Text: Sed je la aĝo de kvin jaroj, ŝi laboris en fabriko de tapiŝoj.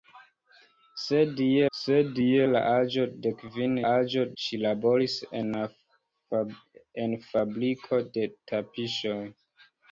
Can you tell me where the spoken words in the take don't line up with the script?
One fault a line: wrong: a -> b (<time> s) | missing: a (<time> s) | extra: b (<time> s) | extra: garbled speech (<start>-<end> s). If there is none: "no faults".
extra: sed je (1.8 s)
wrong: jaroj -> aĝo (3.9 s)